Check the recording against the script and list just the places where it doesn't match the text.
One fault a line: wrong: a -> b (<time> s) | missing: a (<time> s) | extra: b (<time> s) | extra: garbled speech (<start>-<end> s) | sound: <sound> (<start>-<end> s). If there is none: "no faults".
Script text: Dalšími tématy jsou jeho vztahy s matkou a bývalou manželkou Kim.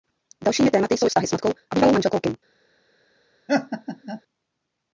missing: jeho (1.1 s)
sound: laugh (3.5-4.2 s)